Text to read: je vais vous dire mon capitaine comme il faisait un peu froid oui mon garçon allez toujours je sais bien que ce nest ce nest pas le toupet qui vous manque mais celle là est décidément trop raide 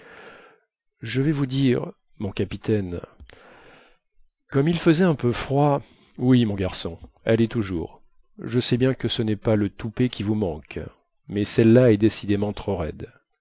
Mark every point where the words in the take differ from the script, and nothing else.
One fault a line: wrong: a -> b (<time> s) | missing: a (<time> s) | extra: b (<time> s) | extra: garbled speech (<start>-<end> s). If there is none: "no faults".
missing: ce nest (9.4 s)